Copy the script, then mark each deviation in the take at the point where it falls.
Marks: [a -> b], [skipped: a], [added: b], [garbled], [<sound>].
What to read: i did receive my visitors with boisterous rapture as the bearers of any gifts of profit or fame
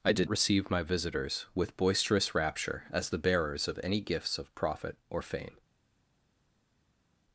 i did receive my visitors with boisterous rapture as the bearers of any gifts of profit or fame